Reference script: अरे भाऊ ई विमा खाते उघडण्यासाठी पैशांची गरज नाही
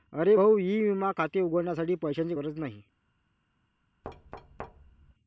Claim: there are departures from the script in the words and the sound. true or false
true